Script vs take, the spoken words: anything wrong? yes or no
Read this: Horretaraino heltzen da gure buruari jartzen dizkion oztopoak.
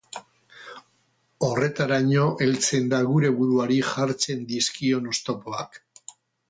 no